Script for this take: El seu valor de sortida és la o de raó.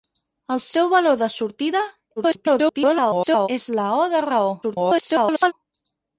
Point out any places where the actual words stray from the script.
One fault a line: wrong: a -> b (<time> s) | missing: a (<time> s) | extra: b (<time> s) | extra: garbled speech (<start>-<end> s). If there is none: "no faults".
extra: garbled speech (2.2-3.5 s)
extra: garbled speech (4.6-5.5 s)